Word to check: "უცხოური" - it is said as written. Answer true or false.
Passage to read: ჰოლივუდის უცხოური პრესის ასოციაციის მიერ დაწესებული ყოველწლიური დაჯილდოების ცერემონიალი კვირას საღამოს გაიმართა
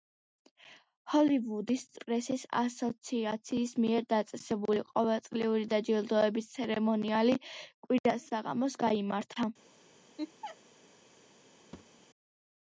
false